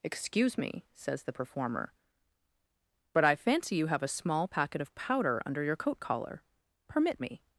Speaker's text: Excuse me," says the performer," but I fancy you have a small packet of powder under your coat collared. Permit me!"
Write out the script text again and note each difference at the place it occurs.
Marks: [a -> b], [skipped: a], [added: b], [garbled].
Excuse me," says the performer," but I fancy you have a small packet of powder under your coat [collared. -> collar] Permit me!"